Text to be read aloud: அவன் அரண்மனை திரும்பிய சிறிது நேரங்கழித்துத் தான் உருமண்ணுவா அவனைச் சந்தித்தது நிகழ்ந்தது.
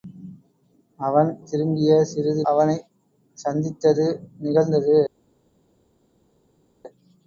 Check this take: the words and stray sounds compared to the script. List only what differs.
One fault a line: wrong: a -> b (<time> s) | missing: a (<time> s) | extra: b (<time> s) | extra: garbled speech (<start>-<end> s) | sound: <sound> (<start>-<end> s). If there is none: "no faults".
missing: அரண்மனை (1.3 s)
missing: நேரங்கழித்துத் தான் உருமண்ணுவா (2.4 s)